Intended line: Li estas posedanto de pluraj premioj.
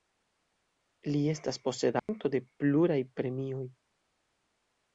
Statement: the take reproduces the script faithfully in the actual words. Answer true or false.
true